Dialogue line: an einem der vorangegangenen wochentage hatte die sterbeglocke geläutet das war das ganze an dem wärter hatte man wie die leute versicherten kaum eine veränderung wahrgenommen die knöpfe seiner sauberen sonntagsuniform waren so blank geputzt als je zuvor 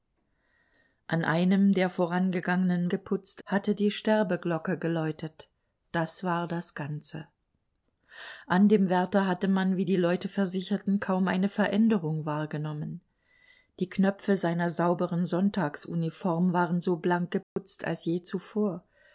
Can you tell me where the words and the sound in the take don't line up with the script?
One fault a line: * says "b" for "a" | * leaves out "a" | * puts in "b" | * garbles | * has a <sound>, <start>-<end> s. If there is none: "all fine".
* says "geputzt" for "wochentage"
* has a dropout, 17.4-17.6 s